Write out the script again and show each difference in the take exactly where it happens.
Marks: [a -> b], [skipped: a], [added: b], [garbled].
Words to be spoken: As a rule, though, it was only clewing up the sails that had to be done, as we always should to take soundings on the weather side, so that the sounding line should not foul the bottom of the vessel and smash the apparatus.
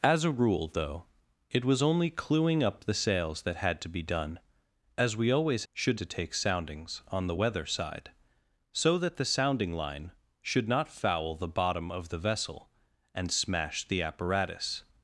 As a rule, though, it was only clewing up the sails that had to be done, as we always should to take soundings on the weather side, so that the sounding line should not foul the bottom of the vessel and smash the apparatus.